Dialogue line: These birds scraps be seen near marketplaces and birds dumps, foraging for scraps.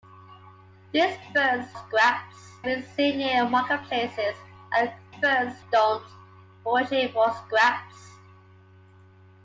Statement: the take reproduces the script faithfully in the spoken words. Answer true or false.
true